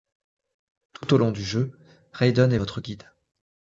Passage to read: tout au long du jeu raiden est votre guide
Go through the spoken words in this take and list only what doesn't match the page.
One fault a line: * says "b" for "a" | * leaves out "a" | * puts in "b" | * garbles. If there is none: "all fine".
all fine